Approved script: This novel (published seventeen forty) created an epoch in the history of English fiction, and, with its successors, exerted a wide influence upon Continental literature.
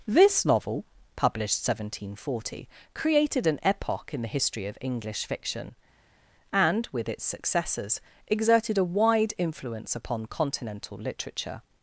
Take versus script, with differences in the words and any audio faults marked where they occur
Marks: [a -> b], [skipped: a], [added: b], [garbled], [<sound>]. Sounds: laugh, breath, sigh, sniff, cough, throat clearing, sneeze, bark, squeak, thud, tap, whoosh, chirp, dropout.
This novel (published seventeen forty) created an epoch in the history of English fiction, and, with its successors, exerted a wide influence upon Continental literature.